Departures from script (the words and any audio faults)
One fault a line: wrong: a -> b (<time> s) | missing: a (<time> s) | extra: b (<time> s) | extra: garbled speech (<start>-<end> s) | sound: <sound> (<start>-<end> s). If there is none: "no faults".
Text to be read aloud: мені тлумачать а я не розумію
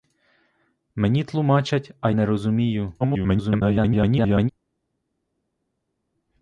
missing: я (2.1 s)
extra: garbled speech (3.0-4.5 s)